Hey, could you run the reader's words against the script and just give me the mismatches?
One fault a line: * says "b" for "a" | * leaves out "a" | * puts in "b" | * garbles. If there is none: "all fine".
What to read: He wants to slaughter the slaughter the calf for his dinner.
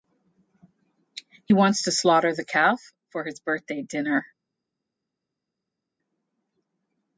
* leaves out "slaughter the"
* puts in "birthday"